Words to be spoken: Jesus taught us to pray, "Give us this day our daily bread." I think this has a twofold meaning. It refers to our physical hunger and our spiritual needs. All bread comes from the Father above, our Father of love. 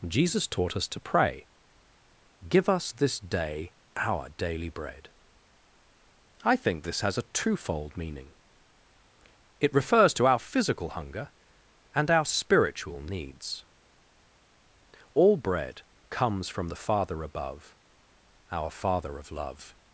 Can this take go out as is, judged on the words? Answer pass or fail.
pass